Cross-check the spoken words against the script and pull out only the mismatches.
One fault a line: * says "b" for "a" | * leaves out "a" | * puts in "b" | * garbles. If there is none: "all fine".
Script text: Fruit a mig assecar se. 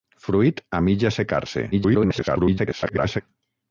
* garbles